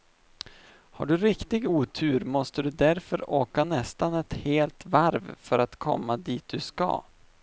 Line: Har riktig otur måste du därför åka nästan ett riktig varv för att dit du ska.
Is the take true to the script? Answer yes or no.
no